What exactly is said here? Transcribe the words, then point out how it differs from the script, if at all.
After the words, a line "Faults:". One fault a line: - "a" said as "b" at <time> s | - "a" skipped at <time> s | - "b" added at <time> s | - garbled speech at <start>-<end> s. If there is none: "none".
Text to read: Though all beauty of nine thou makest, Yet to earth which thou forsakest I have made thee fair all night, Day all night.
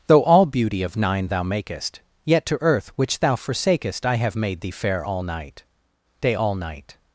Though all beauty of nine thou makest, Yet to earth which thou forsakest I have made thee fair all night, Day all night.
Faults:
none